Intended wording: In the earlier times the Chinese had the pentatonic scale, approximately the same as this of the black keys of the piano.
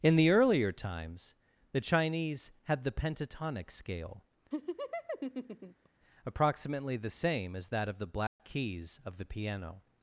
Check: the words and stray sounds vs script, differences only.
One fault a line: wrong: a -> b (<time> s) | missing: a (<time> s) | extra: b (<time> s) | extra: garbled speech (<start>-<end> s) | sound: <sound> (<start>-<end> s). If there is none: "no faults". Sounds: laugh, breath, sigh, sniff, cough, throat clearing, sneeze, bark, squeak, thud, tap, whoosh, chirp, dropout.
sound: laugh (4.5-5.9 s)
wrong: this -> that (7.7 s)
sound: dropout (8.3-8.4 s)